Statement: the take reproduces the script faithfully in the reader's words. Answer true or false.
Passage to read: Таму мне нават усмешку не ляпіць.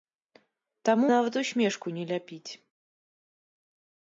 false